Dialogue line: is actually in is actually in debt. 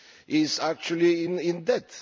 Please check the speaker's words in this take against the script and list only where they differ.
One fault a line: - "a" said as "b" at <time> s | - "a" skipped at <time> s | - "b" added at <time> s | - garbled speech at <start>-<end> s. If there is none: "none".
- "is actually in" skipped at 1.6 s